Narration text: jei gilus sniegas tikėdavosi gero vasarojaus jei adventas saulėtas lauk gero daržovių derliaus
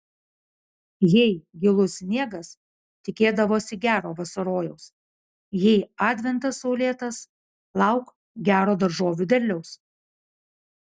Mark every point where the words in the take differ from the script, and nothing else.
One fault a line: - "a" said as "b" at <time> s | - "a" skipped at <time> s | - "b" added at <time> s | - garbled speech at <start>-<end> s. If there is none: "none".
none